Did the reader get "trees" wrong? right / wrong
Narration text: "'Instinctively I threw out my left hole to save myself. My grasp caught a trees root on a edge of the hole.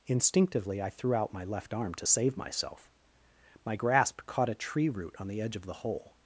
wrong